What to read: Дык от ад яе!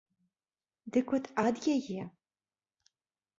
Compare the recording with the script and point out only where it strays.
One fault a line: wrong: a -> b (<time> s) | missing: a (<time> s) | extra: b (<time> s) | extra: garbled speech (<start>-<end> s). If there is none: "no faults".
no faults